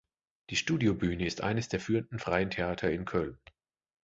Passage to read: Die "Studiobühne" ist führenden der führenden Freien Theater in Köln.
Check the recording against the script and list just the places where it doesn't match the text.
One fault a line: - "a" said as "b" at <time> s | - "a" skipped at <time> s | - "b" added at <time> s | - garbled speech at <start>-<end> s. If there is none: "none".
- "führenden" said as "eines" at 1.4 s